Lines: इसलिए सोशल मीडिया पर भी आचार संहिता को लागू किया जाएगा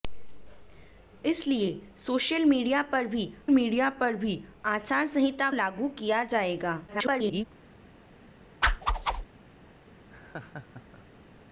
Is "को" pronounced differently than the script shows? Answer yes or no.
yes